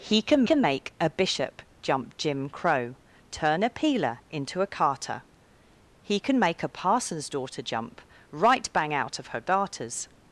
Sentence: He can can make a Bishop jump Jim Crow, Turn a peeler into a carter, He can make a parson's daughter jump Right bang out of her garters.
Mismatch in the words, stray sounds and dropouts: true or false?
false